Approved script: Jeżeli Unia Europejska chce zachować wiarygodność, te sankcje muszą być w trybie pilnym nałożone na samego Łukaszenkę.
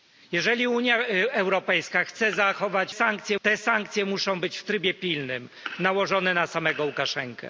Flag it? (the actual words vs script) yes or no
yes